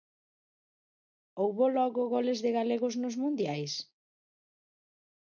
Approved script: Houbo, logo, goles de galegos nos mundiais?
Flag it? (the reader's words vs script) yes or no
no